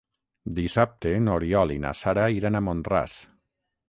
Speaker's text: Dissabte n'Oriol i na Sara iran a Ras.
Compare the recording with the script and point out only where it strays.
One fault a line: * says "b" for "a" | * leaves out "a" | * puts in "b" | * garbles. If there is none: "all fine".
* puts in "Mont"